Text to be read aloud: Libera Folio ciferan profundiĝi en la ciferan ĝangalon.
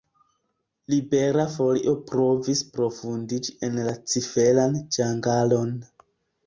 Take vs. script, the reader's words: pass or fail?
fail